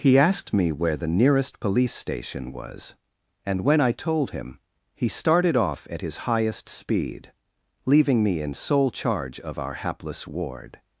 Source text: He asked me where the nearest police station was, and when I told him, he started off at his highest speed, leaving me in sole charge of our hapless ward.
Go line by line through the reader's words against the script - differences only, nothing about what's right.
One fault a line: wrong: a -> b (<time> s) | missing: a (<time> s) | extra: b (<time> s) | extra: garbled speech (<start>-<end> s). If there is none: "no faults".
no faults